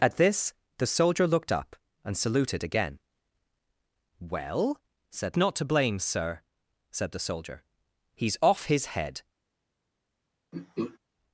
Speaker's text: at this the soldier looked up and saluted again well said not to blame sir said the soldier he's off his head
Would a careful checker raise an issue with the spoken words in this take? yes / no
no